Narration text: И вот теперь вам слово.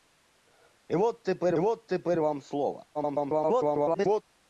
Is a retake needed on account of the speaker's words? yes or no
yes